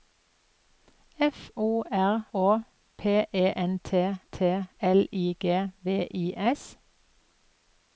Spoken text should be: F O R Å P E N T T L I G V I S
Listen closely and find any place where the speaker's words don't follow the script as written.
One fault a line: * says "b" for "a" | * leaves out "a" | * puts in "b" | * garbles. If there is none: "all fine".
all fine